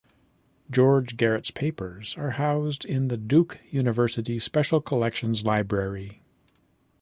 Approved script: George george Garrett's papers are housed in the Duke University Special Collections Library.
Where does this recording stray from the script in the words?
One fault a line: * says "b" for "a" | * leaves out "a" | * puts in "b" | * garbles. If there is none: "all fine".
* leaves out "george"